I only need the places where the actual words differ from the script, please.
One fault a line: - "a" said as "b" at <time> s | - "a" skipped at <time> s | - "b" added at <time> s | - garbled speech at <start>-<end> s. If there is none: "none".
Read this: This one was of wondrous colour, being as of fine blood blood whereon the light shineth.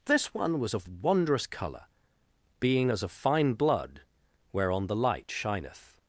- "blood" skipped at 4.0 s